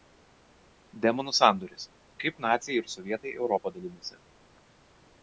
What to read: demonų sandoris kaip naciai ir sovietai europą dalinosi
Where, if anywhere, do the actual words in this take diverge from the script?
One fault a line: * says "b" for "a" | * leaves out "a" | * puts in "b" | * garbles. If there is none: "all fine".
all fine